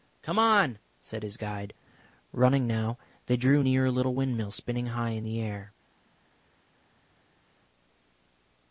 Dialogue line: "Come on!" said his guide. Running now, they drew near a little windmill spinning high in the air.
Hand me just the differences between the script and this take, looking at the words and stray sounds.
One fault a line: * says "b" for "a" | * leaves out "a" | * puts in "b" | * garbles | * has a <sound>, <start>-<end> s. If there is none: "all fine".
all fine